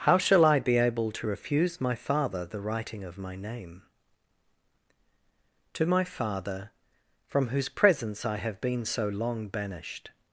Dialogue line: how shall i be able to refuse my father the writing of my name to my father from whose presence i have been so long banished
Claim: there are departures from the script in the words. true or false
false